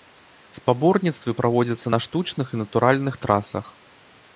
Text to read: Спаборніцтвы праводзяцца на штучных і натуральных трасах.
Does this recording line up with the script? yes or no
yes